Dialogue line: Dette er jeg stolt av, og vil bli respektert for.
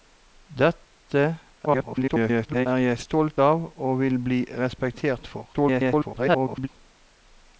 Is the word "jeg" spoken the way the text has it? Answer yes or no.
yes